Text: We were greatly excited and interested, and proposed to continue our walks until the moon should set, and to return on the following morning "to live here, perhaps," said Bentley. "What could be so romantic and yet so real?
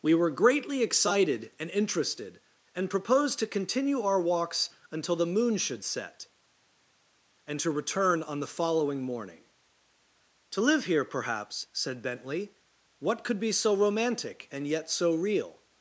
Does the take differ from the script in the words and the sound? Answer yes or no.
no